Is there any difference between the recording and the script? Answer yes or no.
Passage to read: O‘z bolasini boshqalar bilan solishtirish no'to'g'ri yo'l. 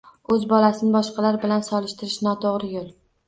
no